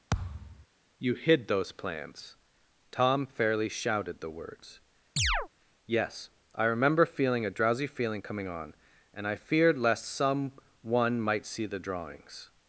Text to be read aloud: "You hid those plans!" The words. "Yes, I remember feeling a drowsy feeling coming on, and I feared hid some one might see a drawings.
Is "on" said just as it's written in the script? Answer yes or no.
yes